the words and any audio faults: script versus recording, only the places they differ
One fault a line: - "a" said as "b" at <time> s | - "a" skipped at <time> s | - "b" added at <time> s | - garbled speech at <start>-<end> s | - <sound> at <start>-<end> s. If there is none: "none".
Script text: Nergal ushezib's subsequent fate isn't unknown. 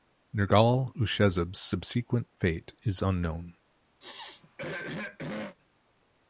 - "isn't" said as "is" at 2.8 s
- throat clearing at 4.0-5.6 s